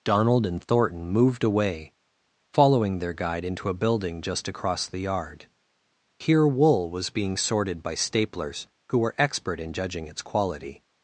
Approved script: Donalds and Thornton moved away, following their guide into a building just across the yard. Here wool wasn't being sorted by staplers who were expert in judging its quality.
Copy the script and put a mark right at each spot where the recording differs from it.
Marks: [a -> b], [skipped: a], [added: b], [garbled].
[Donalds -> Donald] and Thornton moved away, following their guide into a building just across the yard. Here wool [wasn't -> was] being sorted by staplers who were expert in judging its quality.